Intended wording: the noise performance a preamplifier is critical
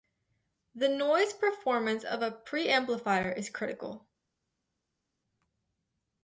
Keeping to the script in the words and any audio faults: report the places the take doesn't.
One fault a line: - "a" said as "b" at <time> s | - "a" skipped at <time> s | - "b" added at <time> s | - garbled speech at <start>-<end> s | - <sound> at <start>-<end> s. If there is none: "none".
- "of" added at 2.0 s